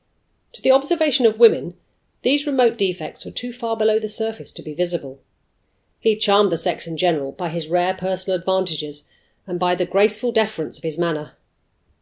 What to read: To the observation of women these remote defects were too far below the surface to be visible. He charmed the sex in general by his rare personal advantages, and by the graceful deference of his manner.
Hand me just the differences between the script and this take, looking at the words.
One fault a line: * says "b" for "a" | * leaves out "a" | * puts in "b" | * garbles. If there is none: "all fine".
all fine